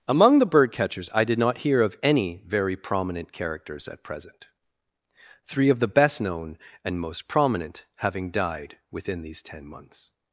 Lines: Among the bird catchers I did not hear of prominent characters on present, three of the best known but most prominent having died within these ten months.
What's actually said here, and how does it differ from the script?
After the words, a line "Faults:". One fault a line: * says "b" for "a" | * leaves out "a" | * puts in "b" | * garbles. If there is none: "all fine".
Among the bird catchers I did not hear of any very prominent characters at present, three of the best known and most prominent having died within these ten months.
Faults:
* puts in "any very"
* says "at" for "on"
* says "and" for "but"